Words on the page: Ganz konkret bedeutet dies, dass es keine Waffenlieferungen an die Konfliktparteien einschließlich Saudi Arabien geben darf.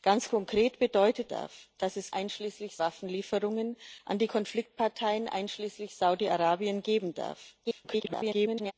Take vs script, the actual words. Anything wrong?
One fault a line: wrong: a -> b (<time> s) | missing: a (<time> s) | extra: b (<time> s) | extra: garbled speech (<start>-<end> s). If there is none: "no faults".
wrong: dies -> darf (1.3 s)
wrong: keine -> einschließlich (2.1 s)
extra: garbled speech (7.6-8.7 s)